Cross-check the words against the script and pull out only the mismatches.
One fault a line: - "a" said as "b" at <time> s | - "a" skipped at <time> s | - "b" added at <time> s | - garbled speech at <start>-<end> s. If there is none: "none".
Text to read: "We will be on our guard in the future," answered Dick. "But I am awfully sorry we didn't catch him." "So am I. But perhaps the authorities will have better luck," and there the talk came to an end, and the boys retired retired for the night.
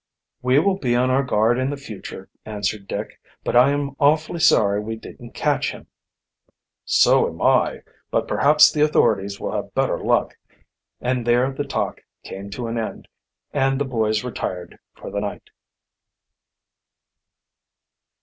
- "retired" skipped at 14.8 s